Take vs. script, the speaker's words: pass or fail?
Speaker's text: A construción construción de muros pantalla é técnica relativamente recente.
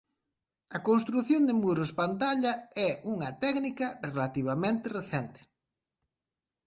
fail